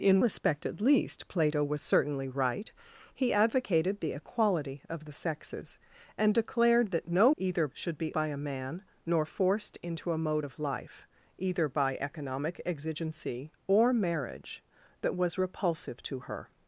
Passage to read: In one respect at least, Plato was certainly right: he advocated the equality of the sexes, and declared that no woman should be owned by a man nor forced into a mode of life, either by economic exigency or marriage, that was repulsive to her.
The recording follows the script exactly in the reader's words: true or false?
false